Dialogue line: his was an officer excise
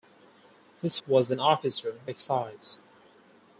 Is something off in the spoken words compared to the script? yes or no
no